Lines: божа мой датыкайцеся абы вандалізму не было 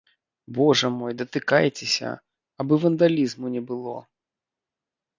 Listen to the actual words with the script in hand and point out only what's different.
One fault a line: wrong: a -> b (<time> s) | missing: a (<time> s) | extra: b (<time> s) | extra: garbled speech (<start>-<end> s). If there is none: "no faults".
no faults